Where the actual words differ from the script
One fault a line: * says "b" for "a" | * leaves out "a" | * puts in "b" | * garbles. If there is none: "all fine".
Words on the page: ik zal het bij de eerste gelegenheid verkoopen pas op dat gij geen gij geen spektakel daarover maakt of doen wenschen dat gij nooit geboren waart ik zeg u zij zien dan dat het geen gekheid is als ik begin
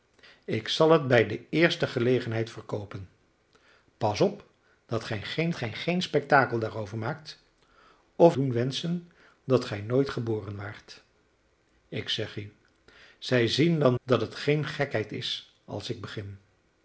all fine